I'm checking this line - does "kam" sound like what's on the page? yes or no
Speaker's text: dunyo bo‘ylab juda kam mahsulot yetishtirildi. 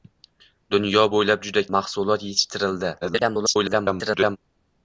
no